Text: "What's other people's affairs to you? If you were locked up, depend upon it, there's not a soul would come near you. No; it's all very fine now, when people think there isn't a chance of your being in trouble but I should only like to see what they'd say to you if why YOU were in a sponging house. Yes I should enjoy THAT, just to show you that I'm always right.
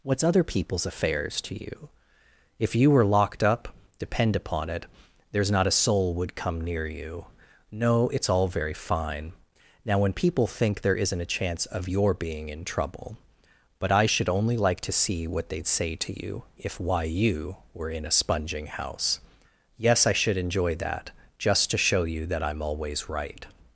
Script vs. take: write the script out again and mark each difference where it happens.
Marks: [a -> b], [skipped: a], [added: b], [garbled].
"What's other people's affairs to you? If you were locked up, depend upon it, there's not a soul would come near you. No; it's all very fine now, when people think there isn't a chance of your being in trouble but I should only like to see what they'd say to you if why YOU were in a sponging house. Yes I should enjoy THAT, just to show you that I'm always right.